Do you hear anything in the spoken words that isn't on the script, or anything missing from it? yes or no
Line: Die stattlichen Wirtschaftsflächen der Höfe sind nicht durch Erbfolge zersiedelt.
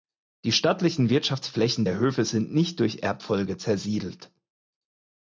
no